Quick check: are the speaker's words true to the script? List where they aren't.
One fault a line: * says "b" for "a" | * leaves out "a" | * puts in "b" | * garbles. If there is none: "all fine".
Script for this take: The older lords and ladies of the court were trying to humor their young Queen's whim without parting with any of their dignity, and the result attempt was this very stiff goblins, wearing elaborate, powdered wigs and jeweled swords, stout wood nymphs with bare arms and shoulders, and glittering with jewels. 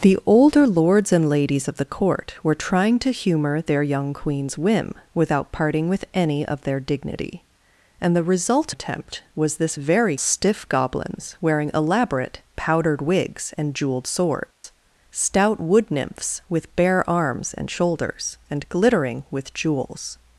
all fine